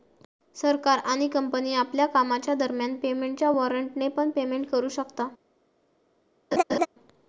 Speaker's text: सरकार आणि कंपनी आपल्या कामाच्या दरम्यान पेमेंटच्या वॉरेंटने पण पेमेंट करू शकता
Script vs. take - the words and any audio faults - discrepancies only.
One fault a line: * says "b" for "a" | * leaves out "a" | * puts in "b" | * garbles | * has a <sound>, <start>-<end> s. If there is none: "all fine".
* has a laugh, 6.5-6.9 s